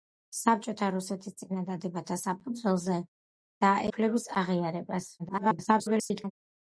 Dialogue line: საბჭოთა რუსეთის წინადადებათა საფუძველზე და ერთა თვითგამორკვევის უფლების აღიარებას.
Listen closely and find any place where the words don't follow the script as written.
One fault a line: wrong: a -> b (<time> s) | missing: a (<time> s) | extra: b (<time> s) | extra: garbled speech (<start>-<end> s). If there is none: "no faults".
missing: ერთა თვითგამორკვევის (3.7 s)
extra: garbled speech (5.2-6.3 s)